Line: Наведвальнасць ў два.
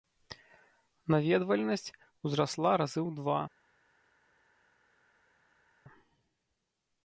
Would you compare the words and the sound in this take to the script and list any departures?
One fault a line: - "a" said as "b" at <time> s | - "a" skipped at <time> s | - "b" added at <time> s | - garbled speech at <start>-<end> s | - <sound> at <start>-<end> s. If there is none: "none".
- "узрасла разы" added at 2.3 s